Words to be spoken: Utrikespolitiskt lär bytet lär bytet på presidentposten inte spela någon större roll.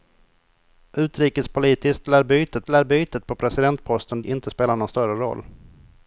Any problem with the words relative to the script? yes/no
no